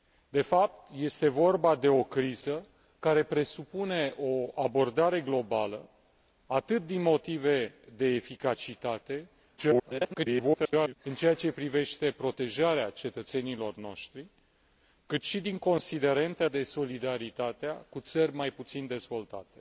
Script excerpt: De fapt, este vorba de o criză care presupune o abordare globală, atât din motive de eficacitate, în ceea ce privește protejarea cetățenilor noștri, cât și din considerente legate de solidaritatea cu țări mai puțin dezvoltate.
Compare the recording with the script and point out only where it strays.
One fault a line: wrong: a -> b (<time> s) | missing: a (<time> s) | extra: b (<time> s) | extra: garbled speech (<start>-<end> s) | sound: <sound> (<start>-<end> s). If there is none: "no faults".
extra: garbled speech (9.6-11.0 s)
missing: legate (16.5 s)